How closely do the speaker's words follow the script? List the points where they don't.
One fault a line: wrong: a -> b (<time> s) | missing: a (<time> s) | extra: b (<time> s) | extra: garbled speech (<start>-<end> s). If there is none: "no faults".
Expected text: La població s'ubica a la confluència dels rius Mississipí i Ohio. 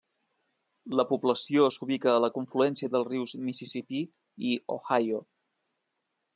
no faults